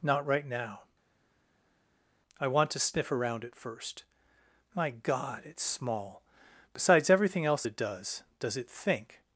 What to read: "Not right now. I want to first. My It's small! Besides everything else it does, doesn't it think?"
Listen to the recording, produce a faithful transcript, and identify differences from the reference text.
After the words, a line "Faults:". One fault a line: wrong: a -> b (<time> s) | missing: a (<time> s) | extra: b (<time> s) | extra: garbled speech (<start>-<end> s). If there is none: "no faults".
"Not right now. I want to sniff around it first. My God, it's small! Besides everything else it does, does it think?"
Faults:
extra: sniff around it (2.8 s)
extra: God (4.9 s)
wrong: doesn't -> does (8.4 s)